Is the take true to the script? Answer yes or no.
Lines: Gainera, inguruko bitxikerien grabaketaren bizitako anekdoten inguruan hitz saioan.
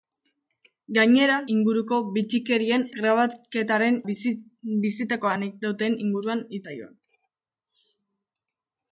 yes